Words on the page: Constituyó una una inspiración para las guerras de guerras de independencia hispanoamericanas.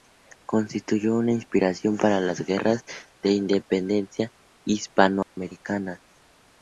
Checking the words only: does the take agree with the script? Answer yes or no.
no